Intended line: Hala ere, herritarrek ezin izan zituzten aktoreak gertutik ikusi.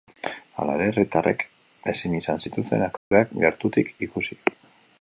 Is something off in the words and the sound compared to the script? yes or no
yes